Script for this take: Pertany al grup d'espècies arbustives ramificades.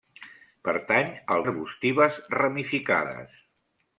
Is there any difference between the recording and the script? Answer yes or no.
yes